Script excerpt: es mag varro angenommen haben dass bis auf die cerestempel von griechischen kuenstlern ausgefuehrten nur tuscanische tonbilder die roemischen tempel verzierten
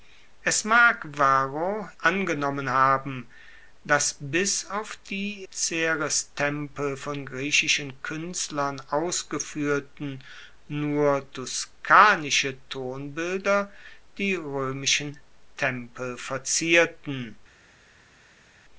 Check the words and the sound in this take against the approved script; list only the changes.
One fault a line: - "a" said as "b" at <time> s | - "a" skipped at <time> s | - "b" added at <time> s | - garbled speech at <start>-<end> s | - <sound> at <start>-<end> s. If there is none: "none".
none